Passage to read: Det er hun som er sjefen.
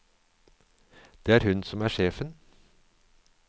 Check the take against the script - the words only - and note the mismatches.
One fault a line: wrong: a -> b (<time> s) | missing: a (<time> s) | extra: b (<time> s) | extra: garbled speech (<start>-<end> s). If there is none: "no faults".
no faults